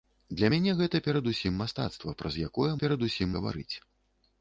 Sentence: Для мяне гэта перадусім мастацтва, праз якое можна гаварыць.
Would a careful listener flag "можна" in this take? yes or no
yes